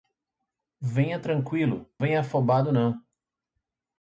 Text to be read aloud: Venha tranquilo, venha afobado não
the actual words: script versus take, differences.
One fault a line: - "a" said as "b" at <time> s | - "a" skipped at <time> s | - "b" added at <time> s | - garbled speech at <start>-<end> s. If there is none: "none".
none